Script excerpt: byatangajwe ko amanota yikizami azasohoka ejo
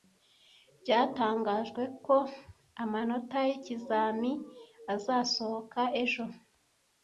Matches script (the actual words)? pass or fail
pass